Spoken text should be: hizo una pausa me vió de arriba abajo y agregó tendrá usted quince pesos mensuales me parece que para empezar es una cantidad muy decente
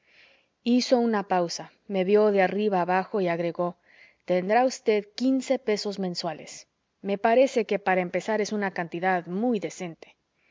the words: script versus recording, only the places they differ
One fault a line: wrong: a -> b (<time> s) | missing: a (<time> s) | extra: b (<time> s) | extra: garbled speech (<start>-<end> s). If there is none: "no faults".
no faults